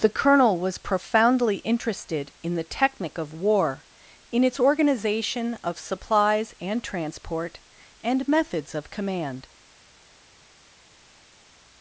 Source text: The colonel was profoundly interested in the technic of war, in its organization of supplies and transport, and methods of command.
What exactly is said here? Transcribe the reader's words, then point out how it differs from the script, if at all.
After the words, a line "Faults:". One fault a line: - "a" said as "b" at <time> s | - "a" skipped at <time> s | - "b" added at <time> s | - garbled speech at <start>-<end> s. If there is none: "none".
The colonel was profoundly interested in the technic of war, in its organization of supplies and transport, and methods of command.
Faults:
none